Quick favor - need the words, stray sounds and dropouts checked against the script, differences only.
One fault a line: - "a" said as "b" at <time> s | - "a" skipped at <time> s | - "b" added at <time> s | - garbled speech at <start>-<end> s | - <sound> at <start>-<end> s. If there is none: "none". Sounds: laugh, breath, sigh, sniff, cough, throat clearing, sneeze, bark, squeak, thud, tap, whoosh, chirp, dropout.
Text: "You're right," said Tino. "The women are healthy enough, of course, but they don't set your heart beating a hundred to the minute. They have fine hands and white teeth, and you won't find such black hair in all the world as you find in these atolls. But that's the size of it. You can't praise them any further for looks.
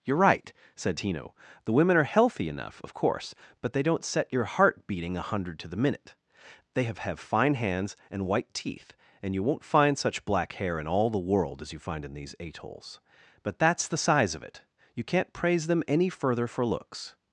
- "have" added at 7.0 s